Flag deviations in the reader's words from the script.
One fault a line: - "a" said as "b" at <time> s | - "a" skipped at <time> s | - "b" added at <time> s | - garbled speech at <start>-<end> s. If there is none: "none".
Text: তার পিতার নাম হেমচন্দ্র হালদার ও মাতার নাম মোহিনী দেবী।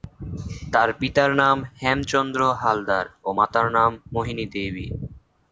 none